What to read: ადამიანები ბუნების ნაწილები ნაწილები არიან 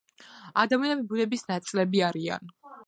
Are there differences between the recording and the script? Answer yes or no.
yes